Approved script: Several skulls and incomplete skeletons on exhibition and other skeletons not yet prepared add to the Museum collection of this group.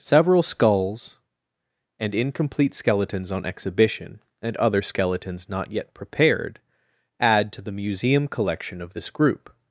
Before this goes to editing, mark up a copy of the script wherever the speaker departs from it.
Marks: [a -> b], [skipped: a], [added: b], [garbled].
Several skulls and incomplete skeletons on exhibition and other skeletons not yet prepared add to the Museum collection of this group.